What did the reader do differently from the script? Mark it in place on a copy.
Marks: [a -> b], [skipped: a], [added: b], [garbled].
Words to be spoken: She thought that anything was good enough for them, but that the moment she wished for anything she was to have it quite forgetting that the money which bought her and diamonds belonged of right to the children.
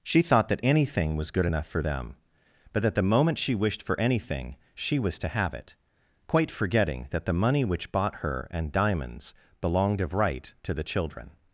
She thought that anything was good enough for them, but that the moment she wished for anything she was to have it quite forgetting that the money which bought her and diamonds belonged of right to the children.